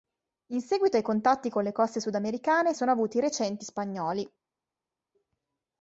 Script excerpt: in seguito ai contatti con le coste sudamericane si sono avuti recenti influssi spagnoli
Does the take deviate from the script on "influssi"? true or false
true